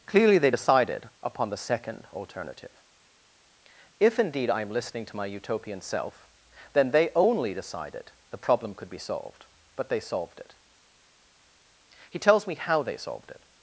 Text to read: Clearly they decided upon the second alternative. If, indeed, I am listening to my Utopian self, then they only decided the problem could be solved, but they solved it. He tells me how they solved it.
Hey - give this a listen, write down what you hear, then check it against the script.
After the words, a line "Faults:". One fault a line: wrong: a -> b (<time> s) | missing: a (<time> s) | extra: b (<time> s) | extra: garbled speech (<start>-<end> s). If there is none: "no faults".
Clearly they decided upon the second alternative. If, indeed, I am listening to my Utopian self, then they only decided the problem could be solved, but they solved it. He tells me how they solved it.
Faults:
no faults